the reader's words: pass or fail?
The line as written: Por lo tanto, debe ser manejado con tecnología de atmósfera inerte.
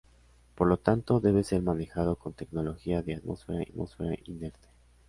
fail